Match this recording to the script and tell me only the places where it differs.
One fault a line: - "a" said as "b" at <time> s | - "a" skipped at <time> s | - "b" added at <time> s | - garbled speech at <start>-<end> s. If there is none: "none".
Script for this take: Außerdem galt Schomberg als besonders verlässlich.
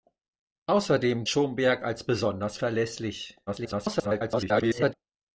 - "galt" skipped at 1.2 s
- garbled speech at 3.5-4.9 s